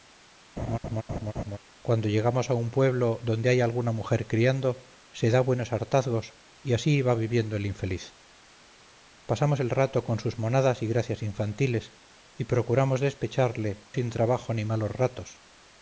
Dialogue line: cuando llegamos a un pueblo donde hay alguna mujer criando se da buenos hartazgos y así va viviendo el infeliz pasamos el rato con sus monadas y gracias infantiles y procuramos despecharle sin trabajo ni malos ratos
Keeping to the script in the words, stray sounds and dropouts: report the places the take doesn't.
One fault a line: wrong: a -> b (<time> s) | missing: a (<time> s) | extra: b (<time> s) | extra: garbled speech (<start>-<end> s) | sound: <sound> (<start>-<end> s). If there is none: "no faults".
sound: laugh (0.6-1.6 s)